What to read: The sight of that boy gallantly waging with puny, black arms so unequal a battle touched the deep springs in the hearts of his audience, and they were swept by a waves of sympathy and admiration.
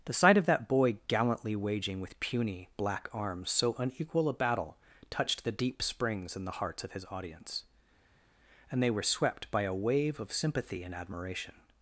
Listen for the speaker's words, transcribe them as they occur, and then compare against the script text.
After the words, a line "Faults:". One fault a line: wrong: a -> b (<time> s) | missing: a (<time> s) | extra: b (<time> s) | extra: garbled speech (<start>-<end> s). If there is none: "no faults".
The sight of that boy gallantly waging with puny, black arms so unequal a battle touched the deep springs in the hearts of his audience, and they were swept by a wave of sympathy and admiration.
Faults:
wrong: waves -> wave (9.7 s)